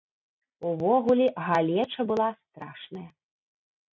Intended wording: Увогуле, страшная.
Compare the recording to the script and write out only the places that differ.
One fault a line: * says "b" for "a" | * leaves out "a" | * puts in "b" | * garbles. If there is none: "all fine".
* puts in "галеча была"